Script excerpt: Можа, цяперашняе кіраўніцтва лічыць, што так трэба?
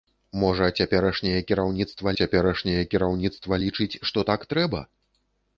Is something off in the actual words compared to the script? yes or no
yes